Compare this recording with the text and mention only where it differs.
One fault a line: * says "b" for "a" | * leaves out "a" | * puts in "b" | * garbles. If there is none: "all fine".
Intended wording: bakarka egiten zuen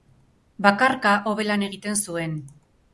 * puts in "hobe lan"